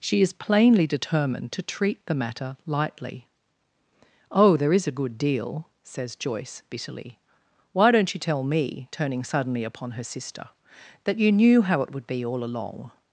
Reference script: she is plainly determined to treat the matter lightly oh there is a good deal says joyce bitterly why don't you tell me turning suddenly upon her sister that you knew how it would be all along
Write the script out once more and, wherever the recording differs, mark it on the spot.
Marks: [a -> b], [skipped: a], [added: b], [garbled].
she is plainly determined to treat the matter lightly oh there is a good deal says joyce bitterly why don't you tell me turning suddenly upon her sister that you knew how it would be all along